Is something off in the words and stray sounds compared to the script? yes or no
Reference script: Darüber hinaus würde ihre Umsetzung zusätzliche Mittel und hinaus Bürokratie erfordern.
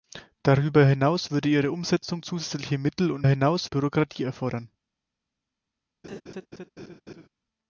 yes